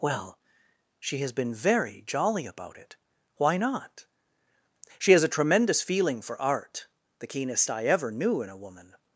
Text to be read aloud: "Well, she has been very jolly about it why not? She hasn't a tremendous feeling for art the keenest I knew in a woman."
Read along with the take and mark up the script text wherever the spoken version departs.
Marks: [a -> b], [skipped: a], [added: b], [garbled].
"Well, she has been very jolly about it why not? She [hasn't -> has] a tremendous feeling for art the keenest I [added: ever] knew in a woman."